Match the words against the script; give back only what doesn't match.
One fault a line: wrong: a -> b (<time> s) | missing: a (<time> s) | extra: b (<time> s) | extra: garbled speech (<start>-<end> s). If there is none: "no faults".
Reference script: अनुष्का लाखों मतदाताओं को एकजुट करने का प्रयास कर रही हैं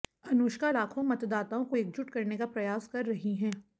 no faults